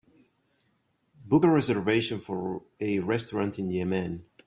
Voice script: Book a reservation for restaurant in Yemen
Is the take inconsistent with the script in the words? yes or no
yes